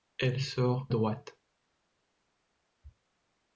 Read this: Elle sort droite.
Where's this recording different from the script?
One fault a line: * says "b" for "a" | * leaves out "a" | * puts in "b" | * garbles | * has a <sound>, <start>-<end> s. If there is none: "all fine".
all fine